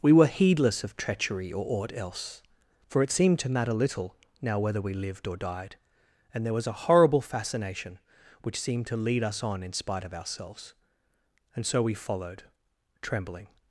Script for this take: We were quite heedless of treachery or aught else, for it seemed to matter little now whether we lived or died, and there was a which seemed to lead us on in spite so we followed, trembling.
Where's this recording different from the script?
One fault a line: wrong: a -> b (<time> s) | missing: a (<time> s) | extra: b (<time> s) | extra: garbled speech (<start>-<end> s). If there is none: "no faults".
missing: quite (0.2 s)
extra: horrible fascination (6.7 s)
extra: of ourselves And (10.0 s)